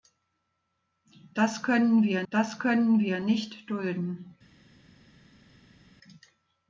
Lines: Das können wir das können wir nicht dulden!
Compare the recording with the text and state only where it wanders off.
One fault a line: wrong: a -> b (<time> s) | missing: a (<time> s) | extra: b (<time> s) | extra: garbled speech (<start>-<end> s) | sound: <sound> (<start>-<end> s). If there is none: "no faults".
no faults